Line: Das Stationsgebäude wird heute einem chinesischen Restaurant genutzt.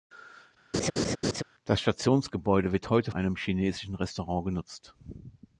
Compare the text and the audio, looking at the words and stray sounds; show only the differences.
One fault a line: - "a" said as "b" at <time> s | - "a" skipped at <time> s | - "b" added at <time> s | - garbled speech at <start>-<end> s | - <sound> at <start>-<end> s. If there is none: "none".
- laugh at 0.7-1.4 s